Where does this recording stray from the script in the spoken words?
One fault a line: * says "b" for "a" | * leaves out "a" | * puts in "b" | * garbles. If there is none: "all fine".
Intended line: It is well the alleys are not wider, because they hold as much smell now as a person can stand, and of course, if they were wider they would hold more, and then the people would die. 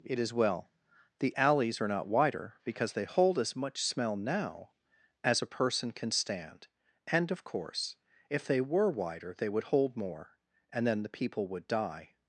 all fine